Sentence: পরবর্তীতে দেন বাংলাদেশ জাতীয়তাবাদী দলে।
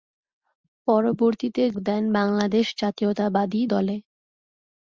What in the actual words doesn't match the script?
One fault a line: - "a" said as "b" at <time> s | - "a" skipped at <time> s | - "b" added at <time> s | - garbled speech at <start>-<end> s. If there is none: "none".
none